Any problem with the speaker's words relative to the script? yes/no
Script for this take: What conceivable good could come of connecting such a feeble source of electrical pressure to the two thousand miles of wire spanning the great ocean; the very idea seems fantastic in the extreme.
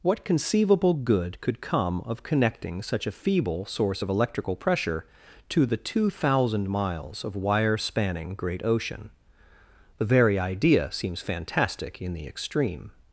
yes